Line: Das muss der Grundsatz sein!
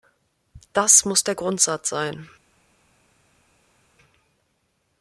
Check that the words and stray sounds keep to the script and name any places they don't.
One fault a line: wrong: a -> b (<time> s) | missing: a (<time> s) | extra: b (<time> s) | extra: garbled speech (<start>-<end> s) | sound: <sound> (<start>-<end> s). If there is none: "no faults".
no faults